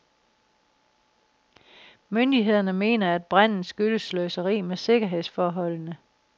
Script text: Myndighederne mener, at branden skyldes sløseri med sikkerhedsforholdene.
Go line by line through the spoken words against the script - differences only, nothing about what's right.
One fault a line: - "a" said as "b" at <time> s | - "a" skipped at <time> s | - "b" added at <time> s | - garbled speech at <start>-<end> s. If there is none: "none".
none